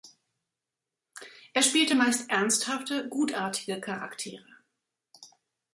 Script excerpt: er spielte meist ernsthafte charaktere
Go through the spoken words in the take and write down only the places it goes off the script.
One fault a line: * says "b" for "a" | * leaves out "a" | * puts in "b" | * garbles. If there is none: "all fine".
* puts in "gutartige"